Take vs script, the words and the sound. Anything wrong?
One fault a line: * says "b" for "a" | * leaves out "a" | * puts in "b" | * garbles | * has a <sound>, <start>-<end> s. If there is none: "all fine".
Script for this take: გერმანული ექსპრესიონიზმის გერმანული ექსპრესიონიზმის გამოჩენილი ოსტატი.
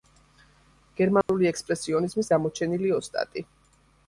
* has a dropout, 1.2-1.3 s
* leaves out "გერმანული ექსპრესიონიზმის"